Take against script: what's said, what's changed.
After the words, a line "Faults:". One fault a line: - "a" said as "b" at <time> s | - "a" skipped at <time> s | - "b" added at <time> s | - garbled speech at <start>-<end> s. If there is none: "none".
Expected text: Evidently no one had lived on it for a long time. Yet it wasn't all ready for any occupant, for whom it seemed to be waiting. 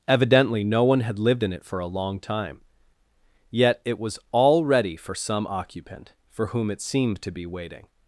Evidently no one had lived in it for a long time. Yet it was all ready for some occupant, for whom it seemed to be waiting.
Faults:
- "on" said as "in" at 1.4 s
- "wasn't" said as "was" at 4.0 s
- "any" said as "some" at 5.1 s